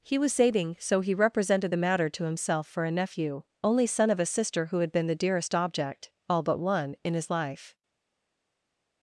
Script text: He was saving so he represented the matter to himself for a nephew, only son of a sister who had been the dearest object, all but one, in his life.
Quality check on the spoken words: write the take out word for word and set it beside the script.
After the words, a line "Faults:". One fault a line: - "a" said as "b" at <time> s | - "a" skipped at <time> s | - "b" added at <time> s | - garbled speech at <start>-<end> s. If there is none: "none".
He was saving so he represented the matter to himself for a nephew, only son of a sister who had been the dearest object, all but one, in his life.
Faults:
none